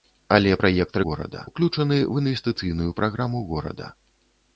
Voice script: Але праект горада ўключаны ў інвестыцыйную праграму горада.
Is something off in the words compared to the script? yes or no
no